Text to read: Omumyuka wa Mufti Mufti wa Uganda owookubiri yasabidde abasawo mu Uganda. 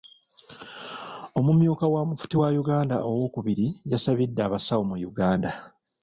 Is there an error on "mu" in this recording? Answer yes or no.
no